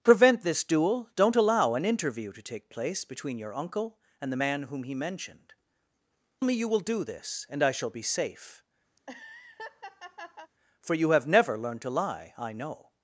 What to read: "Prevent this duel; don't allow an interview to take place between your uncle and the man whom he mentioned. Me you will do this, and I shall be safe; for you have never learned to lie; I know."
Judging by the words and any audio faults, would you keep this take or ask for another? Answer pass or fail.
fail